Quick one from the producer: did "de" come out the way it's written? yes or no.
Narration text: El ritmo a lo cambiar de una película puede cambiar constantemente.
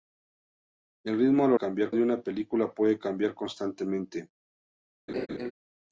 yes